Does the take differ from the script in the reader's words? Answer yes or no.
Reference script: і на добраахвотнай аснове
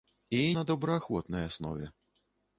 no